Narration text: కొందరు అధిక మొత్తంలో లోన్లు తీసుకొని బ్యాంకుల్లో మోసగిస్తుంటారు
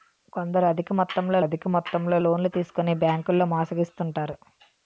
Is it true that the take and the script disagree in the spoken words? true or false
true